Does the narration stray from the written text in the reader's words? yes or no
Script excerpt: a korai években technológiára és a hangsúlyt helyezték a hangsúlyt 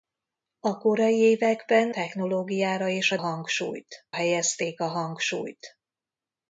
no